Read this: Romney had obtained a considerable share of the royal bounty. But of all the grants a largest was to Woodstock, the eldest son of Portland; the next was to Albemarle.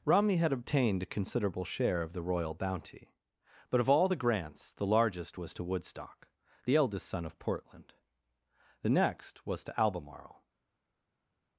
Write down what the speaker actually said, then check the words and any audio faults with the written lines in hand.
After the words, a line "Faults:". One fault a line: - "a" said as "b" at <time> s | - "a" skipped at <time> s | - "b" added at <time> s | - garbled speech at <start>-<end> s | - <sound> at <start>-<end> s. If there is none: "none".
Romney had obtained a considerable share of the royal bounty. But of all the grants the largest was to Woodstock, the eldest son of Portland; the next was to Albemarle.
Faults:
- "a" said as "the" at 4.7 s